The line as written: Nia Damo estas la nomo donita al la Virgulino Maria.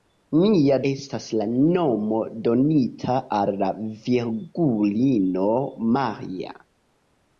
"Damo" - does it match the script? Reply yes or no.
no